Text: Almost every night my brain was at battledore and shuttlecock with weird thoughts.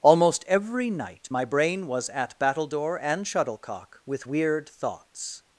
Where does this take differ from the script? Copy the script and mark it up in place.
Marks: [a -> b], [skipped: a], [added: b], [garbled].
Almost every night my brain was at battledore and shuttlecock with weird thoughts.